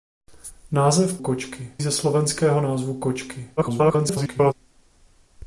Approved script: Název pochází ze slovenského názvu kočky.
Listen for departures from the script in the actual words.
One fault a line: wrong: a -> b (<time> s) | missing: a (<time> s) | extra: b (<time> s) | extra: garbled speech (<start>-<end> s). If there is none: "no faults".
wrong: pochází -> kočky (1.2 s)
extra: garbled speech (3.6-4.5 s)